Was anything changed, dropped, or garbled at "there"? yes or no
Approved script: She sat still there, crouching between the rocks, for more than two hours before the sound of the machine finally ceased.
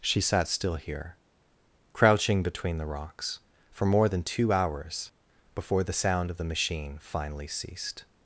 yes